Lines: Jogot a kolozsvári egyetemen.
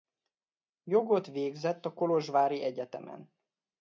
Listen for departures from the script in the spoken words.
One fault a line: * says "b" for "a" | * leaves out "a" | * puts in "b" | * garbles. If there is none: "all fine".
* puts in "végzett"